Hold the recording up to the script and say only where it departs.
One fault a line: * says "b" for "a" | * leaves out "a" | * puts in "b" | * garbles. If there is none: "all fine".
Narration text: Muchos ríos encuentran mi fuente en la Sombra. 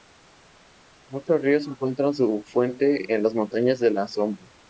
* says "su" for "mi"
* puts in "las Montañas de"